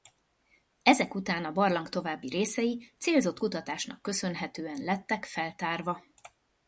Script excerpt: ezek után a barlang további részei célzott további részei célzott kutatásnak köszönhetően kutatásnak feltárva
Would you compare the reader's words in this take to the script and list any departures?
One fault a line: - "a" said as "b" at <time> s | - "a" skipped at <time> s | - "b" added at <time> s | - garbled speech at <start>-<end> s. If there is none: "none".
- "további részei célzott" skipped at 3.4 s
- "kutatásnak" said as "lettek" at 4.8 s